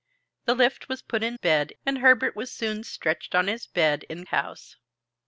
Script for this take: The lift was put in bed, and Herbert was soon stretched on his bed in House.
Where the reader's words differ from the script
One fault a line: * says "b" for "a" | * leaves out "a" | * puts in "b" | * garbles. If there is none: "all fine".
all fine